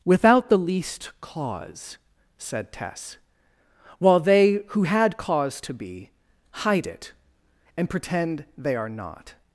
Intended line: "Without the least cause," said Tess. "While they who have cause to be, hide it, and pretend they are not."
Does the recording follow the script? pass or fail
fail